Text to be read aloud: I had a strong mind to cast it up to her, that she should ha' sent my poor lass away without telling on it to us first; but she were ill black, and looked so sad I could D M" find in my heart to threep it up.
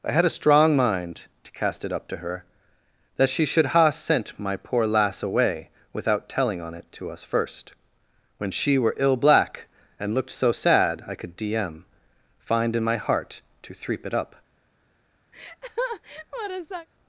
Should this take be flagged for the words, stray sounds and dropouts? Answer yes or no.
yes